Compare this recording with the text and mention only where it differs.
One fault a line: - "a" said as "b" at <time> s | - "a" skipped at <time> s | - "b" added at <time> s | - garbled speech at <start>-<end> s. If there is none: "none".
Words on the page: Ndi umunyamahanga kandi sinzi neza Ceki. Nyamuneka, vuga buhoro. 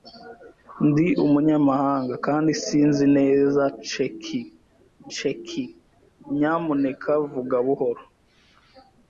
- "Ceki" added at 5.1 s